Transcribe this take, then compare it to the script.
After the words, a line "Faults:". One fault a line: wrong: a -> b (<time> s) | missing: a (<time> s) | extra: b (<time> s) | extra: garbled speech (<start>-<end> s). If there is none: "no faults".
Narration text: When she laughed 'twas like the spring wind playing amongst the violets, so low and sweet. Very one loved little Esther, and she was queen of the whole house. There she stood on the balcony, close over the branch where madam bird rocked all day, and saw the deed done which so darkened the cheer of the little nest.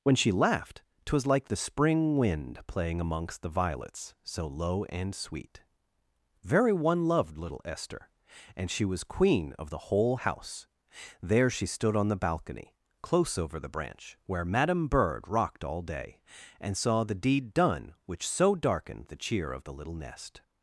When she laughed 'twas like the spring wind playing amongst the violets, so low and sweet. Very one loved little Esther, and she was queen of the whole house. There she stood on the balcony, close over the branch where madam bird rocked all day, and saw the deed done which so darkened the cheer of the little nest.
Faults:
no faults